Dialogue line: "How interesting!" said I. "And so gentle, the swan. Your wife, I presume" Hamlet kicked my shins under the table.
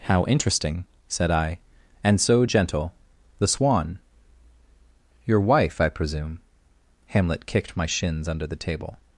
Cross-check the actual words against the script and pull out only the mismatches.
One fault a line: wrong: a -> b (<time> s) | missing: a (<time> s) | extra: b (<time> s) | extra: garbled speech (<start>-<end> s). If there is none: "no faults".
no faults